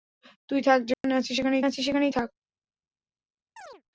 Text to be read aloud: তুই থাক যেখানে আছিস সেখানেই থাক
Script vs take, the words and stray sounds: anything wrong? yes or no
yes